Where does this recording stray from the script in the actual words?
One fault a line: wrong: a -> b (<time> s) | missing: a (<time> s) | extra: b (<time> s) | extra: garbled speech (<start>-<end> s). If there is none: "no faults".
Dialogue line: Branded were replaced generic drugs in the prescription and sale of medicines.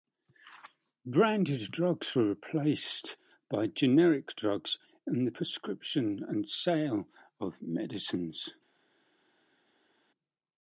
extra: drugs (1.7 s)
extra: by (3.5 s)